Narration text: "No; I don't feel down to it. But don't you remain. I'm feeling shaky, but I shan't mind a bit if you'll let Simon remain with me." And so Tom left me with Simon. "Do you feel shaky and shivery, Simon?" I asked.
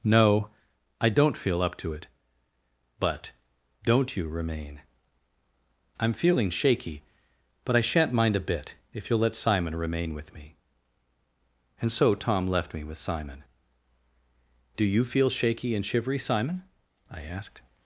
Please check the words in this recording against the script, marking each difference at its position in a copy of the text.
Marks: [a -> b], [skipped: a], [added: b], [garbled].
"No; I don't feel [down -> up] to it. But don't you remain. I'm feeling shaky, but I shan't mind a bit if you'll let Simon remain with me." And so Tom left me with Simon. "Do you feel shaky and shivery, Simon?" I asked.